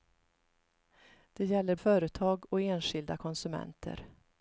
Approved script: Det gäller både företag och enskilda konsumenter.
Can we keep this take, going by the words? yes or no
no